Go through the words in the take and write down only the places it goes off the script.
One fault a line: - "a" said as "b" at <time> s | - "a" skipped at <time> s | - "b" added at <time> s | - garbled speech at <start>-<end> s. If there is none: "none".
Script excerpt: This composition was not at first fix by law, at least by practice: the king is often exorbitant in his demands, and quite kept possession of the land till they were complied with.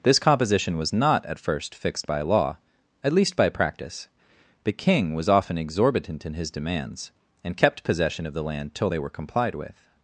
- "fix" said as "fixed" at 1.8 s
- "is" said as "was" at 5.1 s
- "quite" skipped at 7.6 s